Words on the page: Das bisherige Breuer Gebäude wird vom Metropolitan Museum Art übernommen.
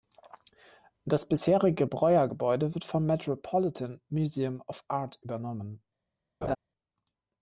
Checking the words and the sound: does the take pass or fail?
fail